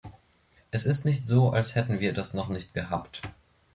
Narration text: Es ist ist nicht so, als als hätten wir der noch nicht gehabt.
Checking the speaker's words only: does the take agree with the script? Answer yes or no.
no